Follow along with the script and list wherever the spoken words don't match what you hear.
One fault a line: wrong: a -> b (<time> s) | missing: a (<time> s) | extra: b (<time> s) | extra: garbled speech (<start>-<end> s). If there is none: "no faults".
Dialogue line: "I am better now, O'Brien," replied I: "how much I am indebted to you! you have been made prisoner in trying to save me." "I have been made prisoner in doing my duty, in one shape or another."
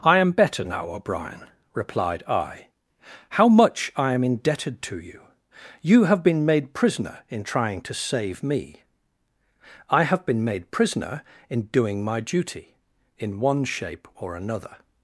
no faults